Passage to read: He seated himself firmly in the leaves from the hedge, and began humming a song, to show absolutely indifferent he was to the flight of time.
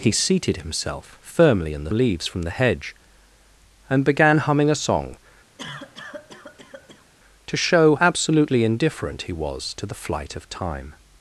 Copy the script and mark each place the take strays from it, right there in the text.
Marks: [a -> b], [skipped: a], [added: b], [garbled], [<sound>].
He seated himself firmly in the leaves from the hedge, and began humming a song, [cough] to show absolutely indifferent he was to the flight of time.